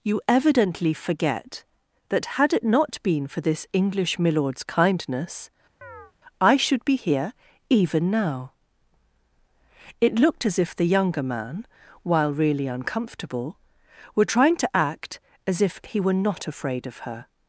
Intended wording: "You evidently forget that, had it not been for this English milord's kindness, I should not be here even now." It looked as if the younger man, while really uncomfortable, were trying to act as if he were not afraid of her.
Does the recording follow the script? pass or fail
fail